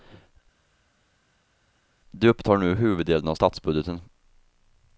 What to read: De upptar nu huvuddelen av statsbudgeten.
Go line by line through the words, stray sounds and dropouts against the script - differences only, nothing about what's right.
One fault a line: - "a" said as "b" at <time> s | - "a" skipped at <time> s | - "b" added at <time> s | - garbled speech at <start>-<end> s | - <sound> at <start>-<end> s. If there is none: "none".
none